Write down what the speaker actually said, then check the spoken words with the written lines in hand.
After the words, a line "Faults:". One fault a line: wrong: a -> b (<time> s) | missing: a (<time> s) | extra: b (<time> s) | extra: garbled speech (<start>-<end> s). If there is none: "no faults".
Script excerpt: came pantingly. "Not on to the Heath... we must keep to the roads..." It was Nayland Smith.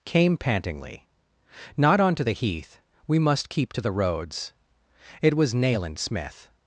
came pantingly. "Not on to the Heath... we must keep to the roads..." It was Nayland Smith.
Faults:
no faults